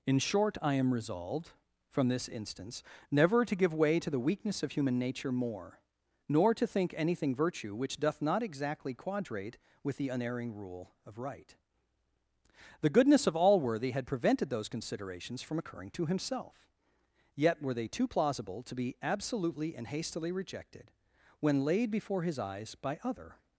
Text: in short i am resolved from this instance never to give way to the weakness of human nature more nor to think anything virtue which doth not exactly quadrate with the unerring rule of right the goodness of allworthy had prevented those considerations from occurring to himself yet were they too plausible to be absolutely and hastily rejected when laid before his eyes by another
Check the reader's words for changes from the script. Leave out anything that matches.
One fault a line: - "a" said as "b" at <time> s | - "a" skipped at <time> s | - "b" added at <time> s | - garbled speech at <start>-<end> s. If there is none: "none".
- "another" said as "other" at 23.0 s